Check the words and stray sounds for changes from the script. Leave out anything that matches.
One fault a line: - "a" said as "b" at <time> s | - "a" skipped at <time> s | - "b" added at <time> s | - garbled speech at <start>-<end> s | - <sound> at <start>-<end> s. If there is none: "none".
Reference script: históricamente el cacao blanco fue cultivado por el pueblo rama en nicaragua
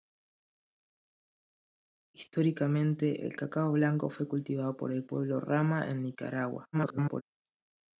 - garbled speech at 6.7-7.2 s